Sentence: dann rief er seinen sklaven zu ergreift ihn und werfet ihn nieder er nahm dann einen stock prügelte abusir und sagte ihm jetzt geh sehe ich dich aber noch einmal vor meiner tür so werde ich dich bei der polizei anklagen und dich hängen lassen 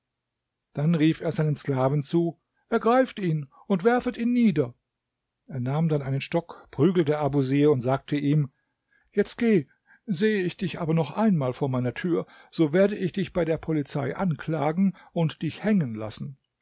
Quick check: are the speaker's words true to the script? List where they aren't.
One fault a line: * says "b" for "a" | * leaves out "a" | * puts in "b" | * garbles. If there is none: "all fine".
all fine